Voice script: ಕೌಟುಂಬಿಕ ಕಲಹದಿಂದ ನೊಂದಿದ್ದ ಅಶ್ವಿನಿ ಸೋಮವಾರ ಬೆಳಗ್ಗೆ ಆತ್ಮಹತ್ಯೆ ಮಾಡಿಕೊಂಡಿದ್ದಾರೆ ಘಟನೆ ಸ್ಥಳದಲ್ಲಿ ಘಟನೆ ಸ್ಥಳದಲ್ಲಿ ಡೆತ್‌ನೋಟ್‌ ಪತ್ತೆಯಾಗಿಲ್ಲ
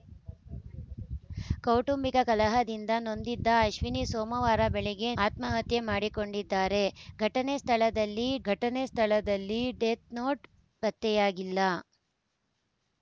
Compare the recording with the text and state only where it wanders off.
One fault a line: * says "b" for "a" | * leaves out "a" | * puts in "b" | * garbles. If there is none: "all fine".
all fine